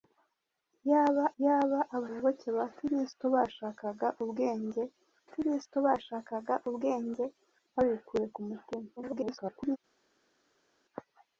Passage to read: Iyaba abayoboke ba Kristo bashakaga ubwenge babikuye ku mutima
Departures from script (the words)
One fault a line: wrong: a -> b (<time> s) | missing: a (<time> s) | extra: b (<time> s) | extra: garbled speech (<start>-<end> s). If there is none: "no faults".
extra: iyaba (1.4 s)
extra: Kristo bashakaga ubwenge (5.3 s)
extra: garbled speech (9.0-9.8 s)